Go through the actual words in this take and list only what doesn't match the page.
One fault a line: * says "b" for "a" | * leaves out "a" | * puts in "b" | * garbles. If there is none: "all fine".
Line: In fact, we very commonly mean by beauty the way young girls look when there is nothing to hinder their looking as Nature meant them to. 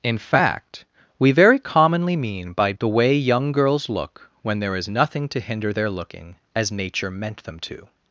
* leaves out "beauty"